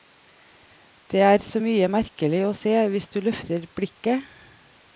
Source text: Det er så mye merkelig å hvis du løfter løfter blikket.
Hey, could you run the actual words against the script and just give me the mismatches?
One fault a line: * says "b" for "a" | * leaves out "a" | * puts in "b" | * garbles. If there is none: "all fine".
* puts in "se"
* leaves out "løfter"